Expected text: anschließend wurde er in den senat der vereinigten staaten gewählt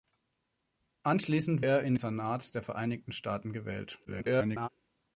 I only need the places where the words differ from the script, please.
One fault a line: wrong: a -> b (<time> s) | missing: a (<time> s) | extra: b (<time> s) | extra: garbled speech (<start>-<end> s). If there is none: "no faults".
missing: wurde (1.6 s)
missing: den (1.9 s)
extra: garbled speech (4.0-4.7 s)